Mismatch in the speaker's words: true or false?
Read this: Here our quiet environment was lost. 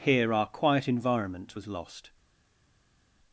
false